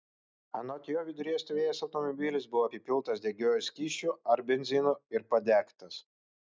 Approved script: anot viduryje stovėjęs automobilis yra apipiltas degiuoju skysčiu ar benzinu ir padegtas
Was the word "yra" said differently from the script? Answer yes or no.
yes